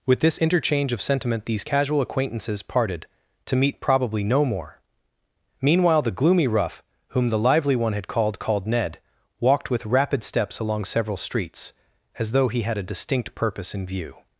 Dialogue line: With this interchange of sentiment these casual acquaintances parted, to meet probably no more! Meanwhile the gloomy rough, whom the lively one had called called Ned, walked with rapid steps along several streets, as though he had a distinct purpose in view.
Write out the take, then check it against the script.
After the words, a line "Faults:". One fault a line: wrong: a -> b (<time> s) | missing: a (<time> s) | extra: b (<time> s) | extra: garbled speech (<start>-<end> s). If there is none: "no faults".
With this interchange of sentiment these casual acquaintances parted, to meet probably no more! Meanwhile the gloomy rough, whom the lively one had called called Ned, walked with rapid steps along several streets, as though he had a distinct purpose in view.
Faults:
no faults